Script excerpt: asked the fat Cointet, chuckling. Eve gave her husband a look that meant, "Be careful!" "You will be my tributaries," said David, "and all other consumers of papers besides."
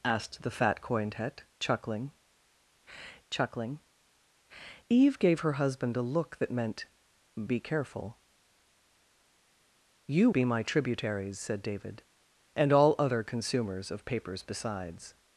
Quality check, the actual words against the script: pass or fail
fail